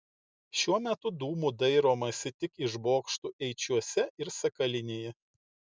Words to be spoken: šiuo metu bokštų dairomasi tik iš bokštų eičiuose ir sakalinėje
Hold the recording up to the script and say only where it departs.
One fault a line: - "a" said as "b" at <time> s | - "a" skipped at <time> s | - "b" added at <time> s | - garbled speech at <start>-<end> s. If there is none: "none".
- "bokštų" said as "dūmų" at 1.2 s